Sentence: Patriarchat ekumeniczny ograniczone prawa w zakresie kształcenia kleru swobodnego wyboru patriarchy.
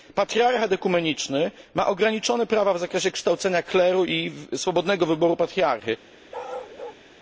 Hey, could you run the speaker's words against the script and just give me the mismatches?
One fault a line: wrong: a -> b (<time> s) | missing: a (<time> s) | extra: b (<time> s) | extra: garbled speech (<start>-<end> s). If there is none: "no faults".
extra: ma (1.7 s)
extra: i (4.0 s)